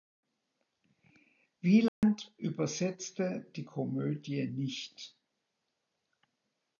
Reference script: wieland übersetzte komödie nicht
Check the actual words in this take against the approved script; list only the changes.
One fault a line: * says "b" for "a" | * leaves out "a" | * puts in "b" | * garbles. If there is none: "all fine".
* puts in "die"